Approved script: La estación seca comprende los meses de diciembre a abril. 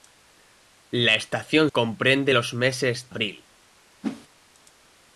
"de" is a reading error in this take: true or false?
true